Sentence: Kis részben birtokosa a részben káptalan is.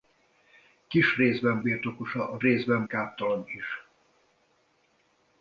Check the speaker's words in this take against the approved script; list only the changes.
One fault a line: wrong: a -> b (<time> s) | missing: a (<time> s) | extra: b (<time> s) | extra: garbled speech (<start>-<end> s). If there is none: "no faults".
no faults